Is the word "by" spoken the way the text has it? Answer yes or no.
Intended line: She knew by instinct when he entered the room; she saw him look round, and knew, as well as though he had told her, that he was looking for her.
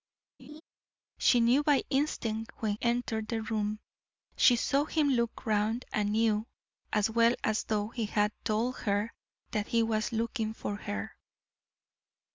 yes